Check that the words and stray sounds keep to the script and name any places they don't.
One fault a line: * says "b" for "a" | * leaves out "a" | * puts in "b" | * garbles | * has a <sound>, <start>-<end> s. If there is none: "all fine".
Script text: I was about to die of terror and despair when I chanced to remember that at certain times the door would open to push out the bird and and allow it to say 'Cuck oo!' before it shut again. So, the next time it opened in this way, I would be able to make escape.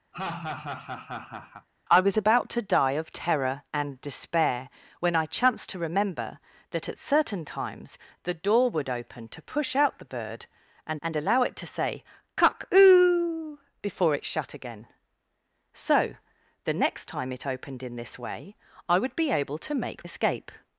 * has a laugh, 0.1-1.7 s